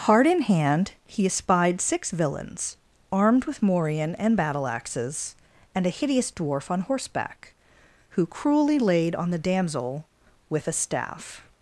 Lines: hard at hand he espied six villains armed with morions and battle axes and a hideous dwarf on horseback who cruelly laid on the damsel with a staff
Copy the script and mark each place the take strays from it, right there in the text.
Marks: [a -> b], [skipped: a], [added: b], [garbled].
hard [at -> in] hand he espied six villains armed with [morions -> morion] and battle axes and a hideous dwarf on horseback who cruelly laid on the damsel with a staff